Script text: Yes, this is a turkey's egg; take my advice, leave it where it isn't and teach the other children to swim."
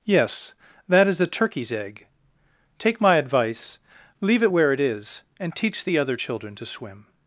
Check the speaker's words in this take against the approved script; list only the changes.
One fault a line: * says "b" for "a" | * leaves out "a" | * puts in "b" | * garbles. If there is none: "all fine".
* says "that" for "this"
* says "is" for "isn't"